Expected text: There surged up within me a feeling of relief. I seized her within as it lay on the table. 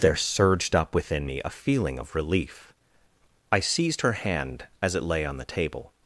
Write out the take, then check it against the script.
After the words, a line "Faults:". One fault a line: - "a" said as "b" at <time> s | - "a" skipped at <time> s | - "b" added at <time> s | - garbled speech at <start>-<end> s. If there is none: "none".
There surged up within me a feeling of relief. I seized her hand as it lay on the table.
Faults:
- "within" said as "hand" at 4.1 s